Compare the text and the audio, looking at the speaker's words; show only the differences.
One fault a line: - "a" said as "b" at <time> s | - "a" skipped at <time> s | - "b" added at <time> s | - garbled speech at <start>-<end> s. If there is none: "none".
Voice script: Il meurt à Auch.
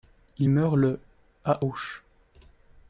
- "le" added at 0.8 s